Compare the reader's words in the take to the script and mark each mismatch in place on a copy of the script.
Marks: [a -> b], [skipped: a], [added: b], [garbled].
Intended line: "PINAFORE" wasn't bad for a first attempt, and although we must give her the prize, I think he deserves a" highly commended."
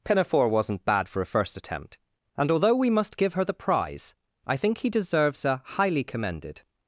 "PINAFORE" wasn't bad for a first attempt, and although we must give her the prize, I think he deserves a" highly commended."